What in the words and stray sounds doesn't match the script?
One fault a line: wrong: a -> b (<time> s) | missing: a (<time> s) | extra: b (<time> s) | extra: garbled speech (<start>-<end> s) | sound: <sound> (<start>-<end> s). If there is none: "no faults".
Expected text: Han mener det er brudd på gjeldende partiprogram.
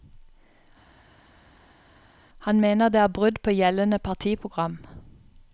no faults